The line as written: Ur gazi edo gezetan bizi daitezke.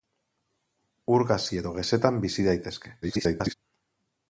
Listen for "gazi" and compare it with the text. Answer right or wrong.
right